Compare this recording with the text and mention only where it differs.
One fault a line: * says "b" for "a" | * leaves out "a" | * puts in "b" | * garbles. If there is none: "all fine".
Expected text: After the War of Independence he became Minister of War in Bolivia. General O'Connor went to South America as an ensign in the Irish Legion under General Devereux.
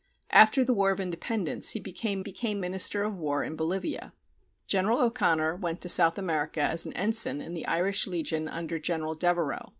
* puts in "became"